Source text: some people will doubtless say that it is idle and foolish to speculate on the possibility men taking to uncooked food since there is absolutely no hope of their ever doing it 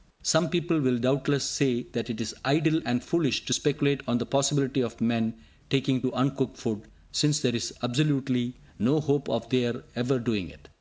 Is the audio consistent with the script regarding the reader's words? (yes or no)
no